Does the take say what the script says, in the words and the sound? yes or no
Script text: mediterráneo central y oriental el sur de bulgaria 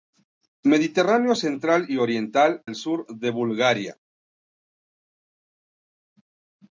yes